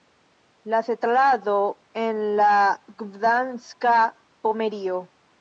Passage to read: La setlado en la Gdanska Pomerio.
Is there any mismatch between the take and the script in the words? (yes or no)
no